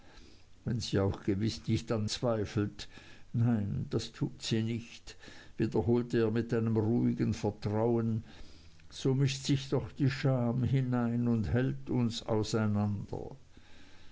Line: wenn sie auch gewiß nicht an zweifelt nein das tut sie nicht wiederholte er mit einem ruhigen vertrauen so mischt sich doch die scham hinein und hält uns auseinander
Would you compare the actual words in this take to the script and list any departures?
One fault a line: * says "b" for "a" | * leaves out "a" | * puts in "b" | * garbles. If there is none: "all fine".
all fine